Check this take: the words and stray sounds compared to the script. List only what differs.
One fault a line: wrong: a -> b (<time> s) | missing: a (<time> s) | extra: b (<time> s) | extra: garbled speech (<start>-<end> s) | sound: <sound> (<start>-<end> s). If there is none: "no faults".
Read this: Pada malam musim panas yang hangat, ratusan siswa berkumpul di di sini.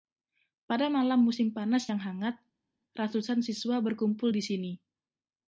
missing: di (4.4 s)